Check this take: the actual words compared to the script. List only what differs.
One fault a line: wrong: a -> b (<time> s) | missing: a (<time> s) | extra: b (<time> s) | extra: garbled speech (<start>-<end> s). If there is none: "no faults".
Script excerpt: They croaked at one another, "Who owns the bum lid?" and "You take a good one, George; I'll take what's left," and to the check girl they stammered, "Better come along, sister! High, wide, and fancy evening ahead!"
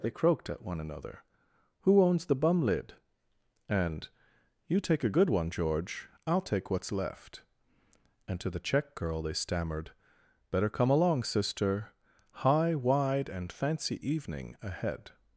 no faults